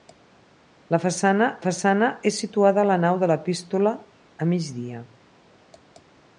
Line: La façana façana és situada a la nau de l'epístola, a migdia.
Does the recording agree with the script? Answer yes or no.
yes